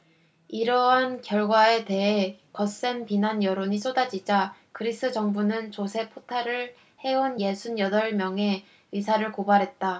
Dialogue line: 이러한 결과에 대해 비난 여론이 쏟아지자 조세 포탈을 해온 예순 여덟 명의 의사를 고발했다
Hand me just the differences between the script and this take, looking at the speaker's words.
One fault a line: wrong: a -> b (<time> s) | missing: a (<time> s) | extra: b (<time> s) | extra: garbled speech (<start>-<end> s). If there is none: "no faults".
extra: 거센 (2.5 s)
extra: 그리스 정부는 (4.7 s)